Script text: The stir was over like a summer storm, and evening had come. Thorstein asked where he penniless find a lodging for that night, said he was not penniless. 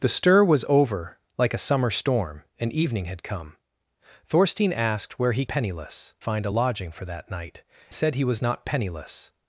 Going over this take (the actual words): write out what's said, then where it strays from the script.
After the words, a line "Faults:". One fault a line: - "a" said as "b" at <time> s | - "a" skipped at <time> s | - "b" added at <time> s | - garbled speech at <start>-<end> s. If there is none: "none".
The stir was over like a summer storm, and evening had come. Thorstein asked where he penniless find a lodging for that night, said he was not penniless.
Faults:
none